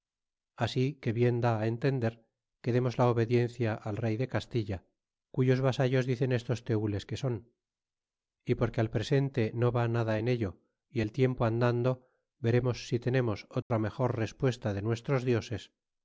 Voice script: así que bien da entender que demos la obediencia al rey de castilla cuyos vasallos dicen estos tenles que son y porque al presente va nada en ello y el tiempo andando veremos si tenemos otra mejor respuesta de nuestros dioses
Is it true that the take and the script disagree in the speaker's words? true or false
true